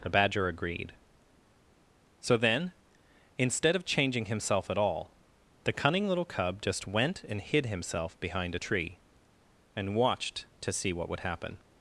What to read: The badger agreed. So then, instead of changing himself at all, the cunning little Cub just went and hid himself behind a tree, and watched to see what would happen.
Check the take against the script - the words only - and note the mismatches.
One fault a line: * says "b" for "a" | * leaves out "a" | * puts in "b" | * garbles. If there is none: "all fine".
all fine